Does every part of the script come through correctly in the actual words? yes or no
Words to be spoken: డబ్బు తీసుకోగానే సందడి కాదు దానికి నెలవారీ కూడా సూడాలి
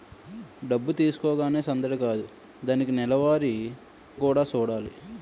yes